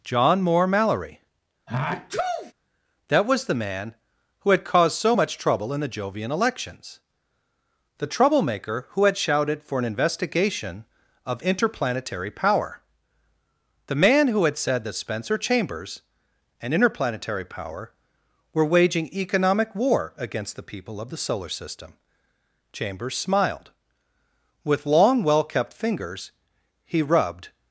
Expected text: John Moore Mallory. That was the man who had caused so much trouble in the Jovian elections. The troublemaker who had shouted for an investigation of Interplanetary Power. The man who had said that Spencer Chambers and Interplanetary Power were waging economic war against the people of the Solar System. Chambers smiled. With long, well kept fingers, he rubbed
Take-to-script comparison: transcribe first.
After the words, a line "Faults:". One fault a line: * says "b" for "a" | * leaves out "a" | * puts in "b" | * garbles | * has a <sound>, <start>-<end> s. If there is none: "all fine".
John Moore Mallory. That was the man who had caused so much trouble in the Jovian elections. The troublemaker who had shouted for an investigation of Interplanetary Power. The man who had said that Spencer Chambers and Interplanetary Power were waging economic war against the people of the Solar System. Chambers smiled. With long, well kept fingers, he rubbed
Faults:
* has a sneeze, 1.7-2.5 s